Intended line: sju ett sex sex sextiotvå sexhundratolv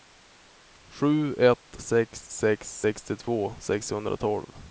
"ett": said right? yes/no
yes